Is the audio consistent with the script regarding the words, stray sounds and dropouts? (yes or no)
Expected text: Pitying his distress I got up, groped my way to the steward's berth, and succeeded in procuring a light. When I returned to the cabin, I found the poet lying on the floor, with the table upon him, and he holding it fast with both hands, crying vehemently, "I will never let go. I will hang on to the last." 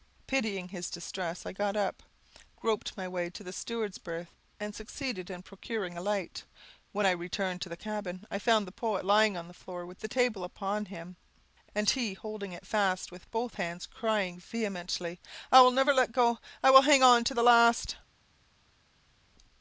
yes